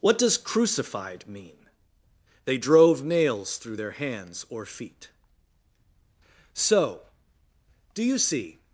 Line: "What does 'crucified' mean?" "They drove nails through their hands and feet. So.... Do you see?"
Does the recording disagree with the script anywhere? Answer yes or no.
yes